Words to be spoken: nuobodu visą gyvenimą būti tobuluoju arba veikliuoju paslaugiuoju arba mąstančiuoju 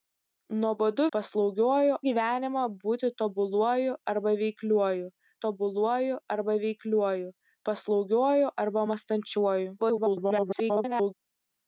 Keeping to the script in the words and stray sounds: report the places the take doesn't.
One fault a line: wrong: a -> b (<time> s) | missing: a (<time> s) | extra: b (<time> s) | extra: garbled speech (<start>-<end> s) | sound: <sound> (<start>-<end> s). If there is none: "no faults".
wrong: visą -> paslaugiuoju (1.2 s)
extra: tobuluoju arba veikliuoju (5.4 s)
extra: garbled speech (9.8-11.1 s)